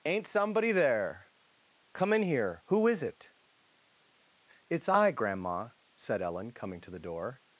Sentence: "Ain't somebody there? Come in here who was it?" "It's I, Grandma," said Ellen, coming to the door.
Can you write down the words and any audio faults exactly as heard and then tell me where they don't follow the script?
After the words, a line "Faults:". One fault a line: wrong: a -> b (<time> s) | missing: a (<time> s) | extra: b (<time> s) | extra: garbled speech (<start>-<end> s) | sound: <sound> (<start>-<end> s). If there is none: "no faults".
"Ain't somebody there? Come in here who is it?" "It's I, Grandma," said Ellen, coming to the door.
Faults:
wrong: was -> is (2.9 s)